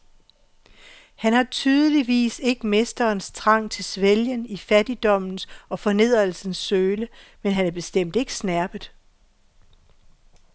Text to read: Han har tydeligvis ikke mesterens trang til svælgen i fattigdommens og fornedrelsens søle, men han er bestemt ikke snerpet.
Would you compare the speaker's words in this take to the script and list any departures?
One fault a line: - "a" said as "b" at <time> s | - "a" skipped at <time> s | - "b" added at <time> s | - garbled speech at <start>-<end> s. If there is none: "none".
none